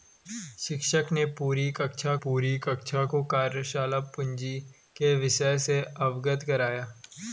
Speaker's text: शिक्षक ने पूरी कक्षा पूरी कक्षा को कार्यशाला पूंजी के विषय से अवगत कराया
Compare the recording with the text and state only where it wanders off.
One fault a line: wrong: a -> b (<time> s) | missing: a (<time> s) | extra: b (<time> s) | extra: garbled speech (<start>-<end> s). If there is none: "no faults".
no faults